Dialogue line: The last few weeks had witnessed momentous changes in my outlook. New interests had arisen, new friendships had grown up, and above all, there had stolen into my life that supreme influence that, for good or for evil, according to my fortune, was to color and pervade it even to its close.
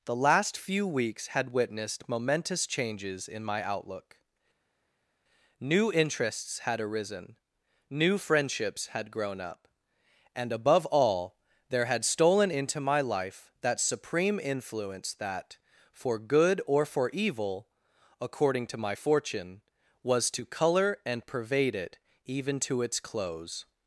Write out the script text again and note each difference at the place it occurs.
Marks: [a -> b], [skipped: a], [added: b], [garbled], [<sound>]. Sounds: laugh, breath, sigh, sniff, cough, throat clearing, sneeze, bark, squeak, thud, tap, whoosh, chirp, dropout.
The last few weeks had witnessed momentous changes in my outlook. New interests had arisen, new friendships had grown up, and above all, there had stolen into my life that supreme influence that, for good or for evil, according to my fortune, was to color and pervade it even to its close.